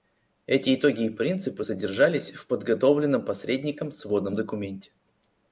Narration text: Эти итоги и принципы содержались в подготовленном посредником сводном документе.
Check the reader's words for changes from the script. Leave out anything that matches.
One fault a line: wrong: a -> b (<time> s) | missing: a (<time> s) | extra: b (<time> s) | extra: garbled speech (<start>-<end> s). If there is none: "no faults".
no faults